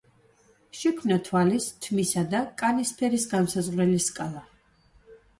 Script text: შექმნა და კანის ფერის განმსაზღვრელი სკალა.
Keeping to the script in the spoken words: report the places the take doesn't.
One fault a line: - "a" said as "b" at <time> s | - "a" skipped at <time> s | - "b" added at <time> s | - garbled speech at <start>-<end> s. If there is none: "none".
- "თვალის თმისა" added at 1.2 s